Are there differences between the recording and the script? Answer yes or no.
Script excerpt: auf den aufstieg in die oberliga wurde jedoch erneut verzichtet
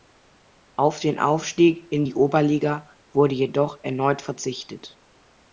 no